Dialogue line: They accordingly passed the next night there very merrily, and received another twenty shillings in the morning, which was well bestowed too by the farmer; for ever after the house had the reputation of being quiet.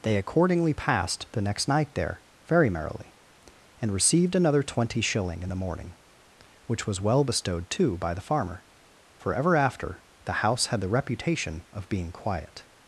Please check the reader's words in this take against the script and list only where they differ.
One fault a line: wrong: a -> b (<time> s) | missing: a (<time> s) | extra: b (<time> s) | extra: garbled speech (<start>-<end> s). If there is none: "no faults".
wrong: shillings -> shilling (5.0 s)